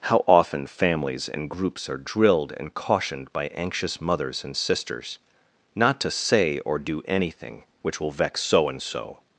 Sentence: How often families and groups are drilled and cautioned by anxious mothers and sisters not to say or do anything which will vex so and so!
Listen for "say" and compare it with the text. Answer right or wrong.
right